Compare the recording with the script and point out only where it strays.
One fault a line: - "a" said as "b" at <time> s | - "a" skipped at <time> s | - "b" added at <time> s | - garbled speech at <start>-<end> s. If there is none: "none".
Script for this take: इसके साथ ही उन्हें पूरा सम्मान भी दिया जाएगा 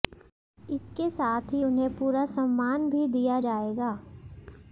none